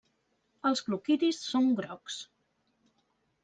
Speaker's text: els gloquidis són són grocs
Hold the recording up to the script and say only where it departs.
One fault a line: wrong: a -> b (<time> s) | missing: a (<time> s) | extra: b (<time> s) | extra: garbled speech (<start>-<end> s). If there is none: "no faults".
missing: són (1.7 s)